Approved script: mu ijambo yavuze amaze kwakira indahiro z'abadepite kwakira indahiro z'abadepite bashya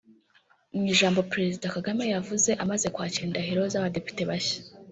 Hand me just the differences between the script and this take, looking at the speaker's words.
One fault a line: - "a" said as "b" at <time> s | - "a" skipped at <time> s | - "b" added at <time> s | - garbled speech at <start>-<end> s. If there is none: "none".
- "perezida kagame" added at 1.3 s
- "kwakira indahiro z'abadepite" skipped at 4.2 s